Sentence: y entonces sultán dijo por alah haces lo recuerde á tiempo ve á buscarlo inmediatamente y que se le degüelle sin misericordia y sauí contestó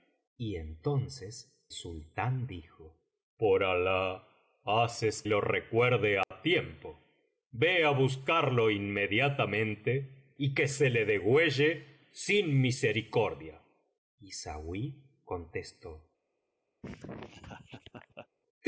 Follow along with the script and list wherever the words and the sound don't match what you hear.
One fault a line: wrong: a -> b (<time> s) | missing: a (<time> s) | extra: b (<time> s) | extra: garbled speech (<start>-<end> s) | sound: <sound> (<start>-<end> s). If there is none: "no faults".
sound: dropout (6.2-6.3 s)
sound: laugh (16.8-18.3 s)